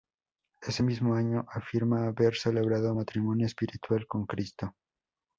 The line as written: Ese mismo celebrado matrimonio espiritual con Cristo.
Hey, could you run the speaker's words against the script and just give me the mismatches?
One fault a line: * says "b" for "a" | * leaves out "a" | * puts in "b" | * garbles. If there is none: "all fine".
* puts in "año afirma haber"